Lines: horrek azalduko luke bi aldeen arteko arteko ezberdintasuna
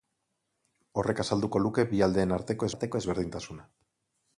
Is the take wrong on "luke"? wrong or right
right